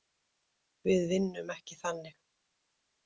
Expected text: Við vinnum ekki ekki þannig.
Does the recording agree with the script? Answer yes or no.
no